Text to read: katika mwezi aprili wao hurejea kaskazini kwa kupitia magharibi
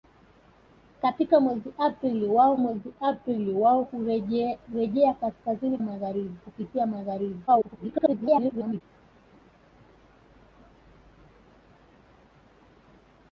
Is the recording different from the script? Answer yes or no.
yes